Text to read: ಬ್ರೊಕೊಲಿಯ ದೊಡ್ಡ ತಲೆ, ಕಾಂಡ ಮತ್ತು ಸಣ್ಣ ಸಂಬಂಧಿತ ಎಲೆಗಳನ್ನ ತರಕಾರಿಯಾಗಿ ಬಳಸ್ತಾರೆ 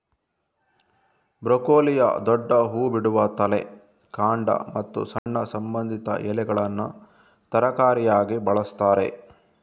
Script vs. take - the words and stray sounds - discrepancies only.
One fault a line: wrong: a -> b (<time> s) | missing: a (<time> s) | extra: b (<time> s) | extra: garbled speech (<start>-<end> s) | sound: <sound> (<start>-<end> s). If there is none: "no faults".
extra: ಹೂ ಬಿಡುವ (2.7 s)
sound: dropout (5.2-5.3 s)